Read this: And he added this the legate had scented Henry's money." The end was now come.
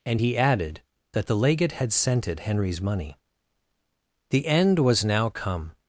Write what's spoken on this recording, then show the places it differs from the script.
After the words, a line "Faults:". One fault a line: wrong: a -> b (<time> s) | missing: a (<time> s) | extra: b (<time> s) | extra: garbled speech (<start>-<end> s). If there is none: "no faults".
And he added that the legate had scented Henry's money." The end was now come.
Faults:
wrong: this -> that (1.1 s)